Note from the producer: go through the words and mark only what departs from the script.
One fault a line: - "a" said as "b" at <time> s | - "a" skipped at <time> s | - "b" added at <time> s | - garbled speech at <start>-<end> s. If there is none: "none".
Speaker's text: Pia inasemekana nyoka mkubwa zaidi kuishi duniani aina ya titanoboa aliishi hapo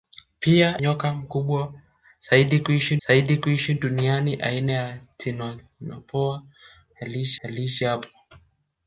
- "inasemekana" skipped at 0.8 s
- "zaidi kuishi" added at 3.1 s
- "aliishi" added at 7.4 s